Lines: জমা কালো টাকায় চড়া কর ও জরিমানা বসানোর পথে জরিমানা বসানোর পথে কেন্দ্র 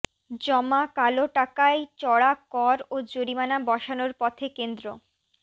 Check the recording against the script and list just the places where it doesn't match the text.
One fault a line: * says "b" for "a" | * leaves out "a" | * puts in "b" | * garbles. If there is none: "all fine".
* leaves out "জরিমানা বসানোর পথে"